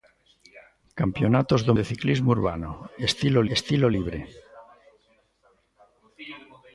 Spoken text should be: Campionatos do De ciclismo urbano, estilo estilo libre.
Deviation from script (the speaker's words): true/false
false